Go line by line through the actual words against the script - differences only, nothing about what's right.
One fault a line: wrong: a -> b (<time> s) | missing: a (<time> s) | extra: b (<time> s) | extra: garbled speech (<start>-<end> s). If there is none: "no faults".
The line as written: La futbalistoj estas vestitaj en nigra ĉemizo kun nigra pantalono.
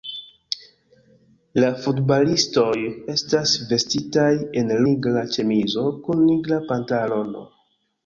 no faults